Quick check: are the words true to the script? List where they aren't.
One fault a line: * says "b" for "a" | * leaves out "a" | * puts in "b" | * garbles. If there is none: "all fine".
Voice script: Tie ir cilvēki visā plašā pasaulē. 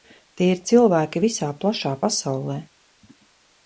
all fine